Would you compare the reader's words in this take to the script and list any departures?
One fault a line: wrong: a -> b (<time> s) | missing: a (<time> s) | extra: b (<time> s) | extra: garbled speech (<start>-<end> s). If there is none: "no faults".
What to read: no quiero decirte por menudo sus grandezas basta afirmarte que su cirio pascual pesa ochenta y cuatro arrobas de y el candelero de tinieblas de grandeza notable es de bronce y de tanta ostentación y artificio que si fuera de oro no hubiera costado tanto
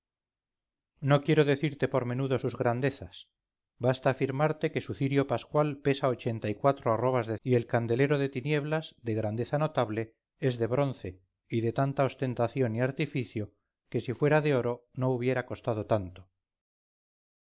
no faults